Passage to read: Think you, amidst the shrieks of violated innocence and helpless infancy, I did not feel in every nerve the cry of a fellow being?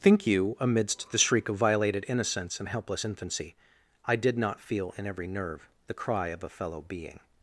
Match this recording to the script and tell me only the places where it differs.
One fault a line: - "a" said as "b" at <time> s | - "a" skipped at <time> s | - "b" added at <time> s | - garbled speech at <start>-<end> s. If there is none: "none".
- "shrieks" said as "shriek" at 1.2 s